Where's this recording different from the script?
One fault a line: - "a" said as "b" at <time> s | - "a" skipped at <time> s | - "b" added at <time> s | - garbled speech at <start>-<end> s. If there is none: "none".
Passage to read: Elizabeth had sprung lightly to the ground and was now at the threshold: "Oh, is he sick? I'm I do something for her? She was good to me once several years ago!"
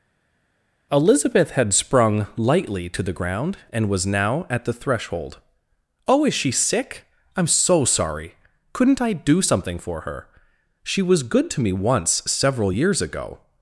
- "he" said as "she" at 6.3 s
- "so sorry Couldn't" added at 7.5 s